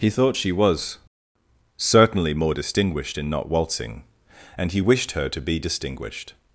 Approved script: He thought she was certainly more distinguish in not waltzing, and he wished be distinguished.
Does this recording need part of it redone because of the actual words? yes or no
yes